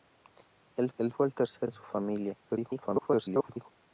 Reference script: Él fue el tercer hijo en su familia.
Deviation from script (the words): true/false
true